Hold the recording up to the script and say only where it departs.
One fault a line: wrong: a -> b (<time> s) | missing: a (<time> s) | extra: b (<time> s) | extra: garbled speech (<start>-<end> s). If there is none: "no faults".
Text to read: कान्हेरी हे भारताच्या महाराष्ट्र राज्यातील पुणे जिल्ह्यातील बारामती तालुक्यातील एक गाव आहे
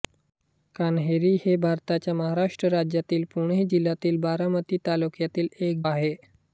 missing: गाव (5.8 s)